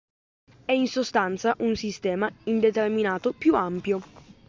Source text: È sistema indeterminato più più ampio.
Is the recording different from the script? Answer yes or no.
yes